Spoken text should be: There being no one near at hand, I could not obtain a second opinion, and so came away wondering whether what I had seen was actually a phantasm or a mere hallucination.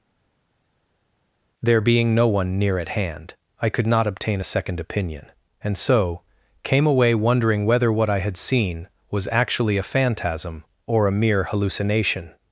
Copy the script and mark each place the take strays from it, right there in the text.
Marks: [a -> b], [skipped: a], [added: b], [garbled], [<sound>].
There being no one near at hand, I could not obtain a second opinion, and so came away wondering whether what I had seen was actually a phantasm or a mere hallucination.